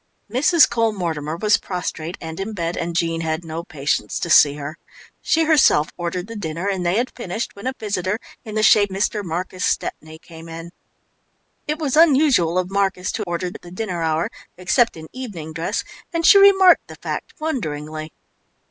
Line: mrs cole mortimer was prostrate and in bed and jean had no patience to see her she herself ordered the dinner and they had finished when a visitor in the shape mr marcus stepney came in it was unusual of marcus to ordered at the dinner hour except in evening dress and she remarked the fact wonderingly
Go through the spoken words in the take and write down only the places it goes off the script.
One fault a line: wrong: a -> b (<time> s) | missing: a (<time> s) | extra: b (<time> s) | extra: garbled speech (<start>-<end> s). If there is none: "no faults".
no faults